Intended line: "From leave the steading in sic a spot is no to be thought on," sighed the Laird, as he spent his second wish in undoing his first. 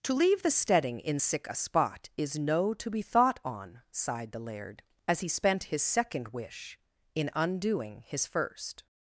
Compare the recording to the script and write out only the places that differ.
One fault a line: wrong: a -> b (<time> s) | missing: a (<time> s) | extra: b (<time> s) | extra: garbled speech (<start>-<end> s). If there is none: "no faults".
wrong: From -> To (0.0 s)